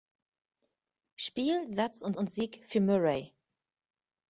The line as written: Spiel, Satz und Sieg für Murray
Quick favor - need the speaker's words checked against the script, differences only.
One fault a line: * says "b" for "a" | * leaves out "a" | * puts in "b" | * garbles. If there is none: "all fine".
* puts in "und"